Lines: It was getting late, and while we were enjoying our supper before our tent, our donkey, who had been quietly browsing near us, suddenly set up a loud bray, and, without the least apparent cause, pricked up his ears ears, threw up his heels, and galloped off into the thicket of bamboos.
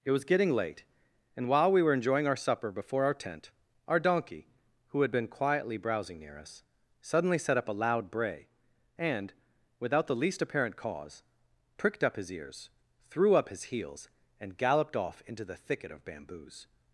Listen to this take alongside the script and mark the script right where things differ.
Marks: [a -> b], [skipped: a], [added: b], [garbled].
It was getting late, and while we were enjoying our supper before our tent, our donkey, who had been quietly browsing near us, suddenly set up a loud bray, and, without the least apparent cause, pricked up his ears [skipped: ears,] threw up his heels, and galloped off into the thicket of bamboos.